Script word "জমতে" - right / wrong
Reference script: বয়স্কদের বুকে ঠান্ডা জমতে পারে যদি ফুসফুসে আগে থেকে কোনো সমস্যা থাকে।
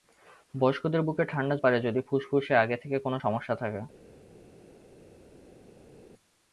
wrong